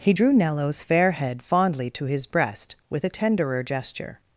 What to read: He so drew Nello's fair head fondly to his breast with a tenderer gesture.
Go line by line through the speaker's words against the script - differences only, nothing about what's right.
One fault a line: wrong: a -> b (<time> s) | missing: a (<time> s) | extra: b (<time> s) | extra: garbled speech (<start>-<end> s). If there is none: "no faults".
missing: so (0.1 s)